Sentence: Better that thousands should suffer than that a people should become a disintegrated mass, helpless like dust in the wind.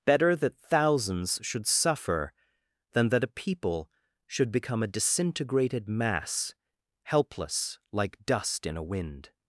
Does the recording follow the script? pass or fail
fail